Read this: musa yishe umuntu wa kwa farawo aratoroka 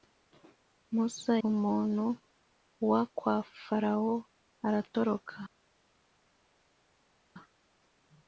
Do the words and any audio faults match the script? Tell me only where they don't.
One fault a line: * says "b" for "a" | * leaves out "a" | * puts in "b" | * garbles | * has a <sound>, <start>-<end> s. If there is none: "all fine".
* leaves out "yishe"